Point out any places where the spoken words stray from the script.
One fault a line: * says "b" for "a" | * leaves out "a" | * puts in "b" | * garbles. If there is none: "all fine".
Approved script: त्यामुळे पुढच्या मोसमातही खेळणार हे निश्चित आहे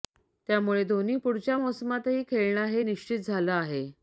* puts in "धोनी"
* puts in "झालं"